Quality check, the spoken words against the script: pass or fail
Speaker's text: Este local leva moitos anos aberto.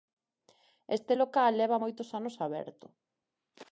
pass